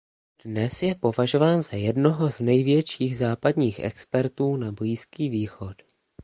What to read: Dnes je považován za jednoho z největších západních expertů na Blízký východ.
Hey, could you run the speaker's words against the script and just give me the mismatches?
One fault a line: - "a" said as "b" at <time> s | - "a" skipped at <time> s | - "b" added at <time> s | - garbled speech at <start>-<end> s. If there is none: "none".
none